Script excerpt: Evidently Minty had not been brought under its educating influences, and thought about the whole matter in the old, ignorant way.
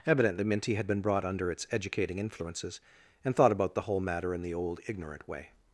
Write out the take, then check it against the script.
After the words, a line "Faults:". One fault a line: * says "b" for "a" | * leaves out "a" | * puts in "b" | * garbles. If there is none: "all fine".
Evidently Minty had been brought under its educating influences, and thought about the whole matter in the old, ignorant way.
Faults:
* leaves out "not"